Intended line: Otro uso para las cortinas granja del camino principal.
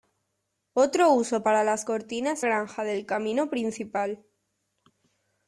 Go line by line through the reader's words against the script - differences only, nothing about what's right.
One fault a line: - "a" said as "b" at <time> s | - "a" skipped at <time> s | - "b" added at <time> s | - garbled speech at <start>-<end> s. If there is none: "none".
none